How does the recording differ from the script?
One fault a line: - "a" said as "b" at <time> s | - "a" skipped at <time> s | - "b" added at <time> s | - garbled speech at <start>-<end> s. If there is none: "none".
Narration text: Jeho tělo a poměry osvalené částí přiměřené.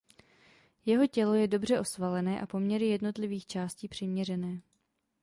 - "je dobře osvalené" added at 1.3 s
- "osvalené" said as "jednotlivých" at 2.9 s